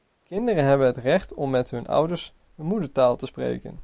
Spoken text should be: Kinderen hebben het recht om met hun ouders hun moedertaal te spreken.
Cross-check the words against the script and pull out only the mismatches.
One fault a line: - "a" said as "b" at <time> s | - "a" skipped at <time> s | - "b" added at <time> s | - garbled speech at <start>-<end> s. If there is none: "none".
none